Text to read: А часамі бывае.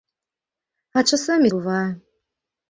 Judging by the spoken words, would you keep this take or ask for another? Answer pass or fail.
pass